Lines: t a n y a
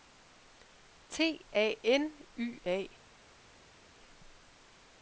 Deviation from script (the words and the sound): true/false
false